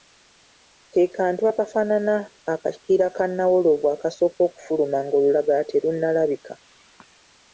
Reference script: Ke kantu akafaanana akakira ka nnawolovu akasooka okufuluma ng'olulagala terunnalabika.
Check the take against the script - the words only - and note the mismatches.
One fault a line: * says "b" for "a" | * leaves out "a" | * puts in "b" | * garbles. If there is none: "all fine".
all fine